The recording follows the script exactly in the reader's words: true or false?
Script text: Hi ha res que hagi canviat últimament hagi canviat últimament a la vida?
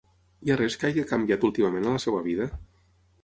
false